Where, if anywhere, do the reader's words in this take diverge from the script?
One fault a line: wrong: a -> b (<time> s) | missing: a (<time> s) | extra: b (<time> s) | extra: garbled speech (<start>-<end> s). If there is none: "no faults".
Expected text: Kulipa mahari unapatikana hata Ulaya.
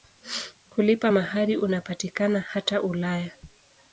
no faults